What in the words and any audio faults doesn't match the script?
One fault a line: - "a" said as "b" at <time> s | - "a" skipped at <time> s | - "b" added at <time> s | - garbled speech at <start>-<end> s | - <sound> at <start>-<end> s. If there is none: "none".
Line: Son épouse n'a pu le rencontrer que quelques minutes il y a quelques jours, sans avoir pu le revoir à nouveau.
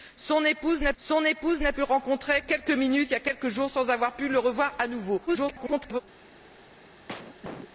- "son épouse n'a" added at 1.0 s
- "que" skipped at 2.4 s
- garbled speech at 5.3-6.0 s
- cough at 7.1-7.7 s